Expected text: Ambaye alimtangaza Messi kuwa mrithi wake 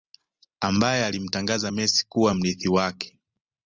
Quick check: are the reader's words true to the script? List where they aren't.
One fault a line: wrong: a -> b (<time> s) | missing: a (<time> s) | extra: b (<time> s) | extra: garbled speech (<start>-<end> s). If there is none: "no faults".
no faults